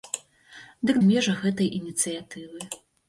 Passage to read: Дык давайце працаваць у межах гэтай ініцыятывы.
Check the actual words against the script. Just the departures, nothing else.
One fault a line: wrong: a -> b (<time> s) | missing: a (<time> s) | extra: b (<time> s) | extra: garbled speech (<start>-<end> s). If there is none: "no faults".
missing: давайце працаваць (0.9 s)